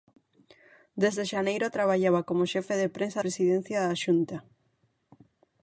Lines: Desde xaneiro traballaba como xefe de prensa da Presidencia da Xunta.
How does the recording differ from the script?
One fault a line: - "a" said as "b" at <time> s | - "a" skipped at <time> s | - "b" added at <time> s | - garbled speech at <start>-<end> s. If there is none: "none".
- "da" skipped at 3.2 s